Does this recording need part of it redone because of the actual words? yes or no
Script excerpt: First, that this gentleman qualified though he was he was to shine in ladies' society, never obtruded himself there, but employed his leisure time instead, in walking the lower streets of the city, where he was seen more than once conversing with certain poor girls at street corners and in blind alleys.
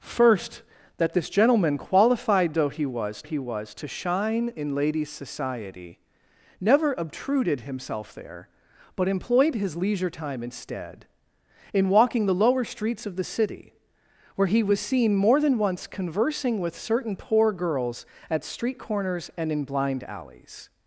no